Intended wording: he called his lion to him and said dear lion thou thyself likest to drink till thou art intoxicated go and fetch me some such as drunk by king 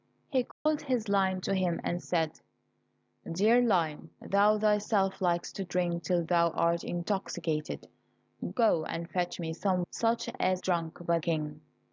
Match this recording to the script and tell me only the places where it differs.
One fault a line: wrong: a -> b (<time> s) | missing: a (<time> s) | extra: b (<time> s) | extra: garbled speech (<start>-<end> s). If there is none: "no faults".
no faults